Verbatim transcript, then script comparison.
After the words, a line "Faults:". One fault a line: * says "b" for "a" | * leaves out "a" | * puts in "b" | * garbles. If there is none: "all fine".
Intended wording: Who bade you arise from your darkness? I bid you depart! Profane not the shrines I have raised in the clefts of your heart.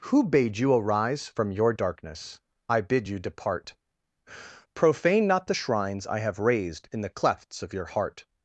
Who bade you arise from your darkness? I bid you depart! Profane not the shrines I have raised in the clefts of your heart.
Faults:
all fine